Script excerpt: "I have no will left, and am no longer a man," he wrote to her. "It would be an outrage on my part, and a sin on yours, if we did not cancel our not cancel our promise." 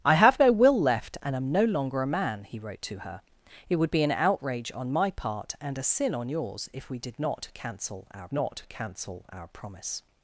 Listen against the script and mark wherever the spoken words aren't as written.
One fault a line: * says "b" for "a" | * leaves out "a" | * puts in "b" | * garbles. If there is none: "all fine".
all fine